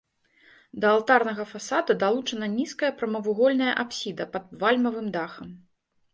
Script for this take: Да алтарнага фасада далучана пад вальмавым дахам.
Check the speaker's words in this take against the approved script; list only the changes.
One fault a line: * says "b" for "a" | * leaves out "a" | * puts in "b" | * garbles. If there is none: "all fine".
* puts in "нізкая прамавугольная апсіда"